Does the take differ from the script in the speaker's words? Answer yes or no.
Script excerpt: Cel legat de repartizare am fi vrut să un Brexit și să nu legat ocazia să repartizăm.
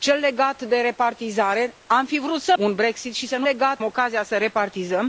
no